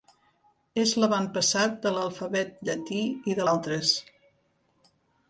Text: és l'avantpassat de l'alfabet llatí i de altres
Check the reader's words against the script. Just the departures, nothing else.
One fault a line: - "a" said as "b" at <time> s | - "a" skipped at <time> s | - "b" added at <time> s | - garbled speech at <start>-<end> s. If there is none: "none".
none